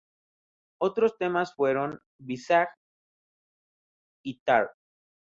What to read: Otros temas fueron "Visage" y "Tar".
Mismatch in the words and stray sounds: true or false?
false